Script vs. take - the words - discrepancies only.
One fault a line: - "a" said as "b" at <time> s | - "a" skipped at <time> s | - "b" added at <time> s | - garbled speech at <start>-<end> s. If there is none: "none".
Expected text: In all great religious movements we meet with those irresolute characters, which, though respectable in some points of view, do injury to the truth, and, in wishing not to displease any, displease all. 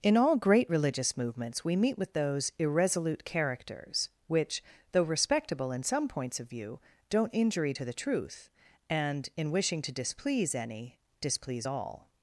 - "do" said as "don't" at 7.1 s
- "not" skipped at 9.8 s